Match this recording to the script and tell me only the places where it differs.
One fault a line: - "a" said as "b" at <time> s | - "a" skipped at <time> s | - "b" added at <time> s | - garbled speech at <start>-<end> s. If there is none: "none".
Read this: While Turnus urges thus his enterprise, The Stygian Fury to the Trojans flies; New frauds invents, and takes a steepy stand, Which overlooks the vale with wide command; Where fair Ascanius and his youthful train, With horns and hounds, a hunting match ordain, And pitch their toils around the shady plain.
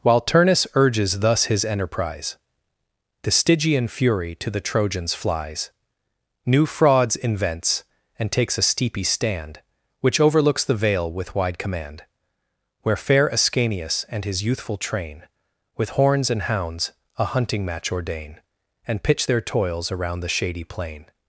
none